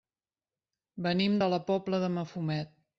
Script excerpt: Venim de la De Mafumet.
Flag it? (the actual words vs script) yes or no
yes